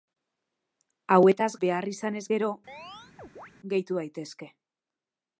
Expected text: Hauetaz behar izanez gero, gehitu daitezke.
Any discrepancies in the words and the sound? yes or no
yes